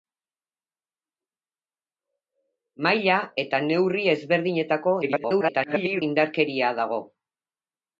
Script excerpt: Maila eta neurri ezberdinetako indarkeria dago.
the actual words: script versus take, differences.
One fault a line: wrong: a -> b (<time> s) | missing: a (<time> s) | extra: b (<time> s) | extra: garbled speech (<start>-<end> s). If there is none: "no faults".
extra: garbled speech (5.0-6.0 s)